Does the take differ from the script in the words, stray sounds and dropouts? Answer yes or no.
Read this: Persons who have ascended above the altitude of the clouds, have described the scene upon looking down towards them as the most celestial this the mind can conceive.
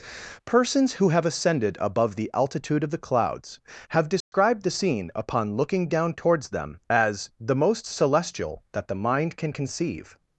yes